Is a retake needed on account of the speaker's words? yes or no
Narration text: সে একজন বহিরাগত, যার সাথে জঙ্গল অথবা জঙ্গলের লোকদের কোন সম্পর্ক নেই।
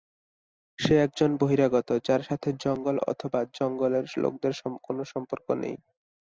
no